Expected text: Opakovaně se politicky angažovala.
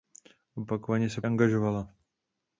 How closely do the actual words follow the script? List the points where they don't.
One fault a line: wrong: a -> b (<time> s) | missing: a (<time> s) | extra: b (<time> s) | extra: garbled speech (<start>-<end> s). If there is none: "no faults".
missing: politicky (1.2 s)